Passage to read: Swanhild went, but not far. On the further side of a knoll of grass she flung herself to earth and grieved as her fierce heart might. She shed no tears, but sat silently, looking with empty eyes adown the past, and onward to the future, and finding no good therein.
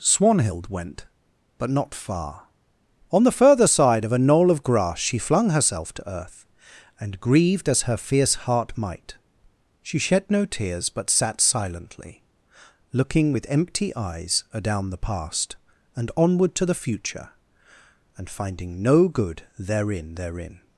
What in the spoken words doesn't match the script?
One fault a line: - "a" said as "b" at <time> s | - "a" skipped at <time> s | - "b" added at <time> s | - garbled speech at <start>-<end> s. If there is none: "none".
- "therein" added at 20.1 s